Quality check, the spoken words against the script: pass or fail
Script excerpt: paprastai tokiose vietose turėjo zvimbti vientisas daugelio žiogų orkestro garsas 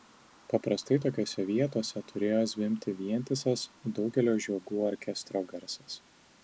pass